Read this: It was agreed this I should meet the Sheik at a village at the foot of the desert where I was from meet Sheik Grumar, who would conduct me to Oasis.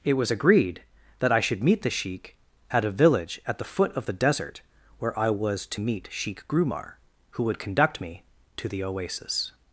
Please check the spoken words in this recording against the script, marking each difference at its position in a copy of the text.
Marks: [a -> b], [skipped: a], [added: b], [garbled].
It was agreed [this -> that] I should meet the Sheik at a village at the foot of the desert where I was [from -> to] meet Sheik Grumar, who would conduct me to [added: the] Oasis.